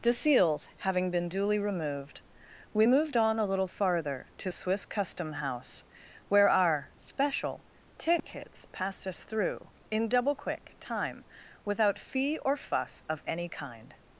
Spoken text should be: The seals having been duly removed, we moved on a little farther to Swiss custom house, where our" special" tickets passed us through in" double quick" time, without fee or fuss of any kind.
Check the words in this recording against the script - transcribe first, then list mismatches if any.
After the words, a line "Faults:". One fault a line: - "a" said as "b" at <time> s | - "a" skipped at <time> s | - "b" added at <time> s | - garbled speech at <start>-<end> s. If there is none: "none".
The seals having been duly removed, we moved on a little farther to Swiss custom house, where our" special" tickets passed us through in" double quick" time, without fee or fuss of any kind.
Faults:
none